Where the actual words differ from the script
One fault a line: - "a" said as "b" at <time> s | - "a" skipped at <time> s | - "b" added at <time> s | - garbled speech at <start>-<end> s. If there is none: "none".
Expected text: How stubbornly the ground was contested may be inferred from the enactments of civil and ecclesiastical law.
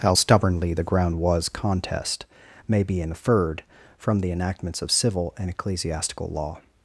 - "contested" said as "contest" at 1.5 s